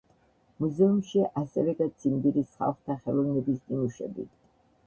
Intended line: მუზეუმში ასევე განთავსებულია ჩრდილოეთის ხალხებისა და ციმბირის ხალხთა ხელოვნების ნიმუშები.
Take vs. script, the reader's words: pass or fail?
fail